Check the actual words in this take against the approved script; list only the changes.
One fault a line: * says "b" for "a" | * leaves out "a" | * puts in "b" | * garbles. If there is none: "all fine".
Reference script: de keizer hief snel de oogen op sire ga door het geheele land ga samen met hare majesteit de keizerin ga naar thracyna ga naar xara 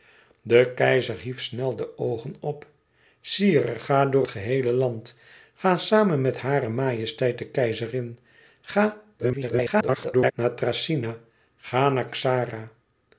* leaves out "het"
* garbles